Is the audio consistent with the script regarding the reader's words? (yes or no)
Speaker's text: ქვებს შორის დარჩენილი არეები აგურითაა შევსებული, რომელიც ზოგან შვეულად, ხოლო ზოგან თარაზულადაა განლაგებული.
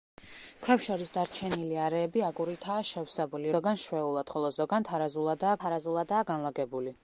no